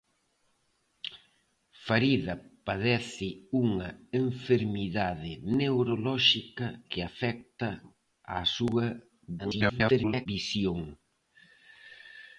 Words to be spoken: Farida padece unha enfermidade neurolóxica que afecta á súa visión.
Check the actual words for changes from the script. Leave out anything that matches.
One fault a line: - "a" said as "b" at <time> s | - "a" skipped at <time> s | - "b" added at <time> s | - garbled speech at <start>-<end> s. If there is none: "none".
- garbled speech at 9.4-10.3 s